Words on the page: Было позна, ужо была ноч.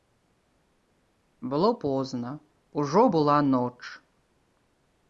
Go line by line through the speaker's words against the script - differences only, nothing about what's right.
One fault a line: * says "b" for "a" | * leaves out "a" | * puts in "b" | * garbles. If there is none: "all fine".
all fine